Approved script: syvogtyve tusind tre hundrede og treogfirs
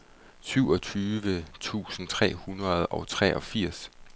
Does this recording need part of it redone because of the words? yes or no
no